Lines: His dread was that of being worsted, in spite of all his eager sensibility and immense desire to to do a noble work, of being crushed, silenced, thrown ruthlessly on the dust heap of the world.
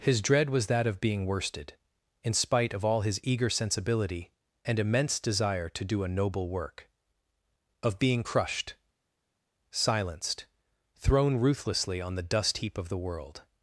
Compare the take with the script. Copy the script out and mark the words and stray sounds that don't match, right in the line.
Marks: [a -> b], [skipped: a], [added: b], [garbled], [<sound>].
His dread was that of being worsted, in spite of all his eager sensibility and immense desire to [skipped: to] do a noble work, of being crushed, silenced, thrown ruthlessly on the dust heap of the world.